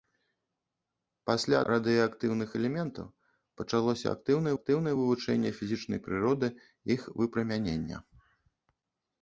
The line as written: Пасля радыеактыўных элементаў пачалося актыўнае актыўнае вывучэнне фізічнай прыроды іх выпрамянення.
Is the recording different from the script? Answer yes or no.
no